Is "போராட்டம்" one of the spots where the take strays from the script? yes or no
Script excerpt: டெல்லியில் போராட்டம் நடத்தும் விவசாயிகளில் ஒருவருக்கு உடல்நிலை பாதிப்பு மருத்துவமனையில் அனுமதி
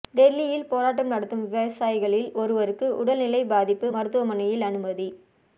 no